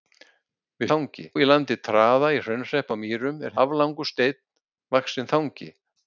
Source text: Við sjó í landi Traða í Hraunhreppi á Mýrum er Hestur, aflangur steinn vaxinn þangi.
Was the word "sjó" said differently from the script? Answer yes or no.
yes